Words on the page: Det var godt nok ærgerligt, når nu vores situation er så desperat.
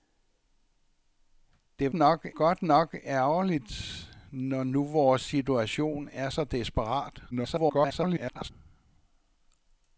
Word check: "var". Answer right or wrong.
wrong